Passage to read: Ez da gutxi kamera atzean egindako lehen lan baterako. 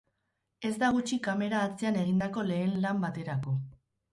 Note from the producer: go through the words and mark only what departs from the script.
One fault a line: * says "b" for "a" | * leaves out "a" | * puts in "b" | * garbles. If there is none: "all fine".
all fine